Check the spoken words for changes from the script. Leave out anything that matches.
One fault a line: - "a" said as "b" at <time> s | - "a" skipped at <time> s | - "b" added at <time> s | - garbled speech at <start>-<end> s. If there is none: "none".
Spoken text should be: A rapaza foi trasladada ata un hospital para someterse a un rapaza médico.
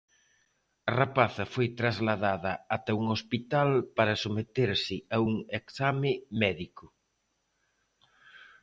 - "rapaza" said as "exame" at 5.6 s